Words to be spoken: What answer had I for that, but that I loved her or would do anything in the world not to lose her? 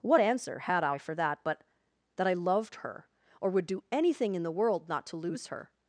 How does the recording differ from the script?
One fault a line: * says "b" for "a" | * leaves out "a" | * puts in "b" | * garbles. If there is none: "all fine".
all fine